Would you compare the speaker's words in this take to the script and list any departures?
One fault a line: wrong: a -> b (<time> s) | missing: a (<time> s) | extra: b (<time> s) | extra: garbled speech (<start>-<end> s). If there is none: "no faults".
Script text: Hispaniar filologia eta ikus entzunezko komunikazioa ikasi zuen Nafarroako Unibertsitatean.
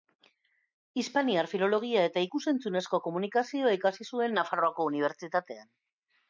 no faults